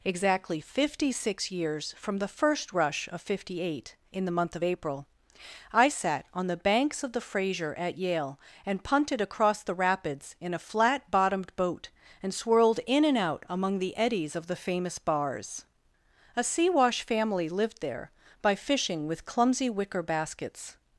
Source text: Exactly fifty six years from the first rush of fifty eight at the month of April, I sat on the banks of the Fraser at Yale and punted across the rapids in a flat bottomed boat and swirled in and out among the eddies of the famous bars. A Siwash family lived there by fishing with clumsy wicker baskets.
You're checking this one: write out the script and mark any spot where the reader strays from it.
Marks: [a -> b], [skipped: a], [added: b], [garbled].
Exactly fifty six years from the first rush of fifty eight [at -> in] the month of April, I sat on the banks of the Fraser at Yale and punted across the rapids in a flat bottomed boat and swirled in and out among the eddies of the famous bars. A Siwash family lived there by fishing with clumsy wicker baskets.